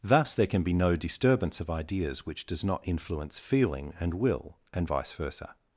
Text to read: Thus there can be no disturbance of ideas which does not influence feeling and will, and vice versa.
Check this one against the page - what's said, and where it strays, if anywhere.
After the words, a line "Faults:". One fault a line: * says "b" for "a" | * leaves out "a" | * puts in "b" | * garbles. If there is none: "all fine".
Thus there can be no disturbance of ideas which does not influence feeling and will, and vice versa.
Faults:
all fine